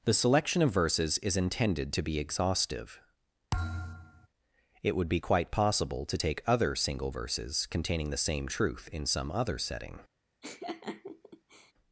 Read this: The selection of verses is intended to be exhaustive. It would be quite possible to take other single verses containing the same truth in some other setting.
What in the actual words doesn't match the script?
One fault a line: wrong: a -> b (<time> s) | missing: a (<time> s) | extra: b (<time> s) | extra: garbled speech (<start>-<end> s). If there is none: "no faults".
no faults